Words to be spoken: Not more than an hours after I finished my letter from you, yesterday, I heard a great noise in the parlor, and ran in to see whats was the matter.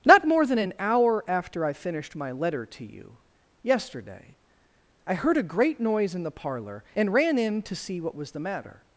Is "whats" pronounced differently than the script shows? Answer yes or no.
yes